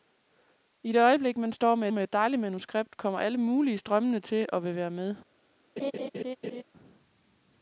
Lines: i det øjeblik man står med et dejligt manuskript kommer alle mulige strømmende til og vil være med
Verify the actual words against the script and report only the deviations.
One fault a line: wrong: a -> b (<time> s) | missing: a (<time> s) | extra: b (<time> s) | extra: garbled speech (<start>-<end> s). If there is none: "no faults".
extra: med (1.9 s)